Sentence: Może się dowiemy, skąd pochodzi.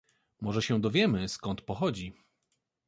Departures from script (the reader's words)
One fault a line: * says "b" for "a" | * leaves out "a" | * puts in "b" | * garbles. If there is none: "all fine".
all fine